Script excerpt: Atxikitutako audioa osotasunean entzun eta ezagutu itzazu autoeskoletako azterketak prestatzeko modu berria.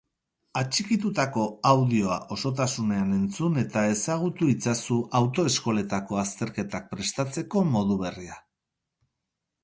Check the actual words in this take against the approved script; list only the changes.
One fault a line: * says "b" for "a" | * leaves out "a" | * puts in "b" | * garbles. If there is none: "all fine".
all fine